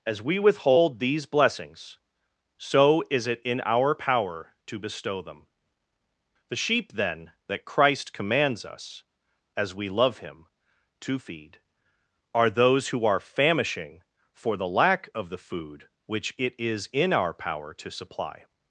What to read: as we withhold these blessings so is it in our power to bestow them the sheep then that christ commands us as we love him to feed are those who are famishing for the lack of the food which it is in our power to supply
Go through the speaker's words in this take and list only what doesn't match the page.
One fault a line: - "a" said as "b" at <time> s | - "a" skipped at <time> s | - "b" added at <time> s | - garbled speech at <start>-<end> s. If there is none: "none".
none